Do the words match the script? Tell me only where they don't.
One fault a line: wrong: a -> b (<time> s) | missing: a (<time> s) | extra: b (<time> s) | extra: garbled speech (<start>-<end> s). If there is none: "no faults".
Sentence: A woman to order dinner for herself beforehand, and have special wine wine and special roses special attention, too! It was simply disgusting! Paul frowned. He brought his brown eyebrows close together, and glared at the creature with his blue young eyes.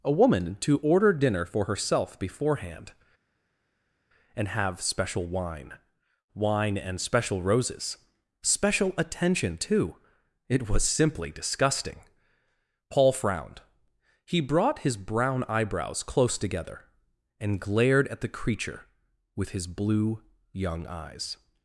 no faults